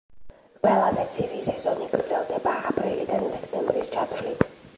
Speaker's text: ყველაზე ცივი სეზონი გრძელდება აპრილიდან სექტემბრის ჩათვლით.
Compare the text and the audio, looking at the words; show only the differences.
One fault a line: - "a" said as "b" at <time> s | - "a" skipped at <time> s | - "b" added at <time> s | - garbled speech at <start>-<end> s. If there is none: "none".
none